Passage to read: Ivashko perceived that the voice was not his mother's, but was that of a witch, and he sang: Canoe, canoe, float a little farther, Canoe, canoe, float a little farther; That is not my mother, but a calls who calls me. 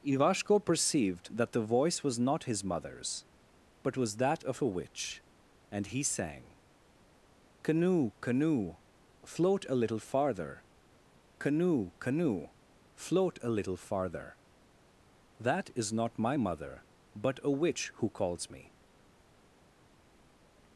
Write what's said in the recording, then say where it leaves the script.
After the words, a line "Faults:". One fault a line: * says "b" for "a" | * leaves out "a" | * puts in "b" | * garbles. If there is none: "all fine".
Ivashko perceived that the voice was not his mother's, but was that of a witch, and he sang: Canoe, canoe, float a little farther, Canoe, canoe, float a little farther; That is not my mother, but a witch who calls me.
Faults:
* says "witch" for "calls"